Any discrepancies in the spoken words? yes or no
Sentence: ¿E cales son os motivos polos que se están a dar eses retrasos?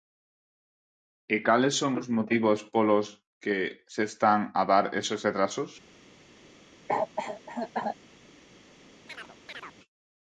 no